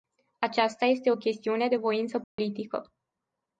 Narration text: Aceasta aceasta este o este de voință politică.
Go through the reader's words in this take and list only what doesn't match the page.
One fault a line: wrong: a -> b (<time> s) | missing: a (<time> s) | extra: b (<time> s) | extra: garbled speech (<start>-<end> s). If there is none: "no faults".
missing: aceasta (0.8 s)
wrong: este -> chestiune (1.1 s)